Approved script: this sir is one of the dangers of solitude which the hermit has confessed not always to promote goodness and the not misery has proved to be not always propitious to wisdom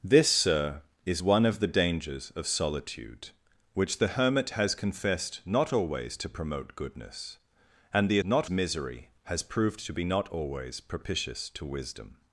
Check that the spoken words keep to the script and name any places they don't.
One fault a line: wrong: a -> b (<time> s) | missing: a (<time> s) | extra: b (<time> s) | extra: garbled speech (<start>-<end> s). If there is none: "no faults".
no faults